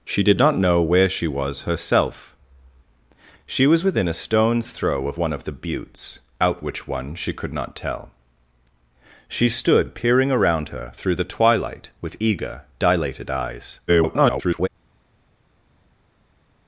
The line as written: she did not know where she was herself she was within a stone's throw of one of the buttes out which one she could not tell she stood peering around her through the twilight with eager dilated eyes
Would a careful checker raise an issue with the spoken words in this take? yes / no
yes